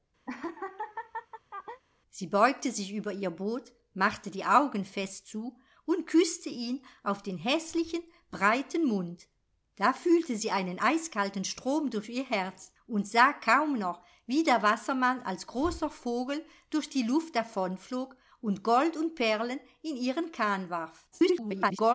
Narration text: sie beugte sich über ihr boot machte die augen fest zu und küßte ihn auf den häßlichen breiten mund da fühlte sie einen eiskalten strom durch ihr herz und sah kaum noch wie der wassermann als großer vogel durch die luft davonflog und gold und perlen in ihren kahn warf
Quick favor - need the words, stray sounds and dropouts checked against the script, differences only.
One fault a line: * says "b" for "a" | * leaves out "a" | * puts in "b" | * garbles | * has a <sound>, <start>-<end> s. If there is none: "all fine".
* has a laugh, 0.3-1.8 s
* garbles